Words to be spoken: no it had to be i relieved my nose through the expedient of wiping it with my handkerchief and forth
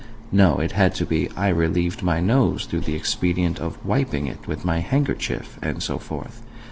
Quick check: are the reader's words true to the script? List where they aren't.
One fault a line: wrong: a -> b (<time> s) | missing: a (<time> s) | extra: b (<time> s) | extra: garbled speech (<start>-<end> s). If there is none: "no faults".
extra: so (5.8 s)